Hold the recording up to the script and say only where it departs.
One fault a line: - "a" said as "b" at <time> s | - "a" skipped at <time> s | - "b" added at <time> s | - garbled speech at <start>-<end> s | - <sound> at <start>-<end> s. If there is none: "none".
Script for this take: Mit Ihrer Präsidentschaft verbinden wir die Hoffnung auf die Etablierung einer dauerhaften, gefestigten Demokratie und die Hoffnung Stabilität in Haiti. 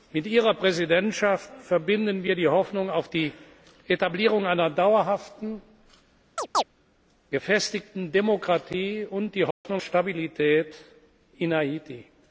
- chirp at 6.4-6.6 s
- dropout at 9.5-9.7 s